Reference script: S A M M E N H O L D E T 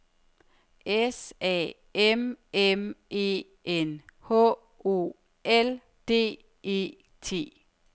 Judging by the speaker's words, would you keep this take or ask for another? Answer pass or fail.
pass